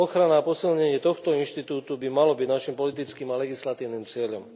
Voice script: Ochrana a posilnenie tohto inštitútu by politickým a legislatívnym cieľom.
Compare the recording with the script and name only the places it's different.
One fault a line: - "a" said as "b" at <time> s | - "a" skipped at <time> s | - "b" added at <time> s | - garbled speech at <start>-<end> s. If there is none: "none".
- "malo byť naším" added at 2.1 s